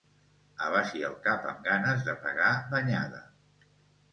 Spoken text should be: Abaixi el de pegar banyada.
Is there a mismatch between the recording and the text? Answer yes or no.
yes